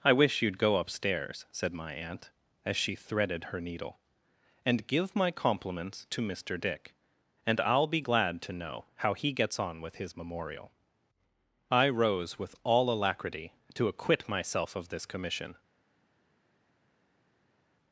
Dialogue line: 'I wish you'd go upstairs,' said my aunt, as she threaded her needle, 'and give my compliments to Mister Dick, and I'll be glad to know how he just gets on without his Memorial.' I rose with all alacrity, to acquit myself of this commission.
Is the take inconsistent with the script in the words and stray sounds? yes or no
yes